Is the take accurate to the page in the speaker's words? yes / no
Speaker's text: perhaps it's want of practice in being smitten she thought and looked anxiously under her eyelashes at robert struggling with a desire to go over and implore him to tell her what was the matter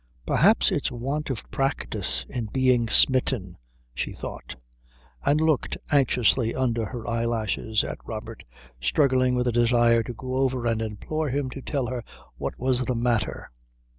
yes